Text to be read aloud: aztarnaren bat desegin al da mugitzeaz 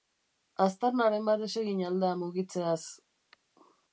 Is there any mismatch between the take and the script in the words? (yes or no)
no